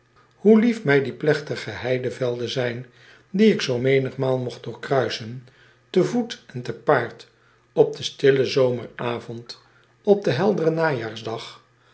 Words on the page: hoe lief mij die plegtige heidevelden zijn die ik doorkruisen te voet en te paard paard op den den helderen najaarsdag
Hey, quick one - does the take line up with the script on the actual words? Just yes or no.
no